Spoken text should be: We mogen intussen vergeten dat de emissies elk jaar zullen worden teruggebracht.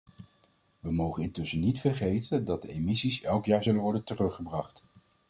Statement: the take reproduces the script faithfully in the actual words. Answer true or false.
false